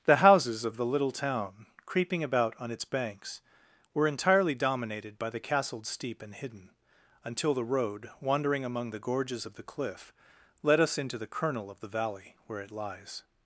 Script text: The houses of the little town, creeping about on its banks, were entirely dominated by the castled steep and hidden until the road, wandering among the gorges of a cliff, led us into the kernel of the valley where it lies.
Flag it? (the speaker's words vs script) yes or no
yes